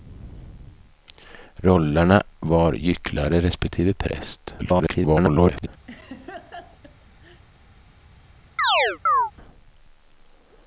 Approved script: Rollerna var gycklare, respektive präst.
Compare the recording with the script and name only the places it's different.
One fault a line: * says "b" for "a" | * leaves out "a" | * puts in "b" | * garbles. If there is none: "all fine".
* garbles